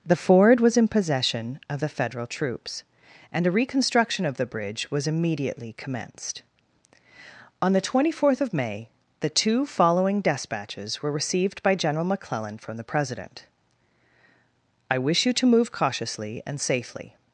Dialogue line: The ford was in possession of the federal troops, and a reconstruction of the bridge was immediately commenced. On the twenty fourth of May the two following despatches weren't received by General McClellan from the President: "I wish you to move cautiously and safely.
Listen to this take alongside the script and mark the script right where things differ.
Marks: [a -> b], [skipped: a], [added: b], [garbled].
The ford was in possession of the federal troops, and a reconstruction of the bridge was immediately commenced. On the twenty fourth of May the two following despatches [weren't -> were] received by General McClellan from the President: "I wish you to move cautiously and safely.